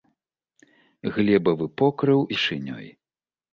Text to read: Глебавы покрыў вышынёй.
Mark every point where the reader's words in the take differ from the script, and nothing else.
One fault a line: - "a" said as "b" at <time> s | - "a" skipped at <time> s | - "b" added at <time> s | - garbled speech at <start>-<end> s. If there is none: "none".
none